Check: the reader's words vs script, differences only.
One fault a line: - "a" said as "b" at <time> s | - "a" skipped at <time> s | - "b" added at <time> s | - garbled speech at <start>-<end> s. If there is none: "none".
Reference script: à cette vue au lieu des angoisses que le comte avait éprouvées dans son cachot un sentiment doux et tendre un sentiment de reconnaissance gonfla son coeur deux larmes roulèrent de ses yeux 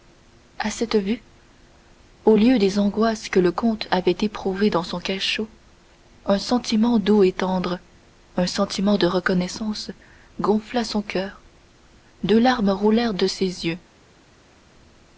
none